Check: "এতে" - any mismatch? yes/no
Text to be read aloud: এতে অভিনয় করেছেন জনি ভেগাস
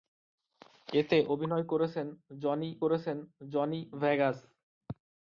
no